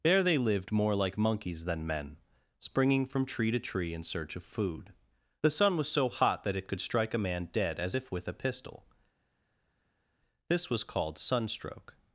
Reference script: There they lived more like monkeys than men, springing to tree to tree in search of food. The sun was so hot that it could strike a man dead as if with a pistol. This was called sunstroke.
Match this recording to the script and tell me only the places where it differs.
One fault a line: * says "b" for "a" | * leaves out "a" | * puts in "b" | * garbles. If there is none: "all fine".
* says "from" for "to"